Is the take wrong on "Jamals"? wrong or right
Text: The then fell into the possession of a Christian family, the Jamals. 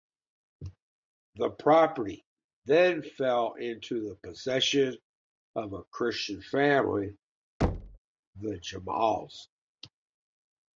right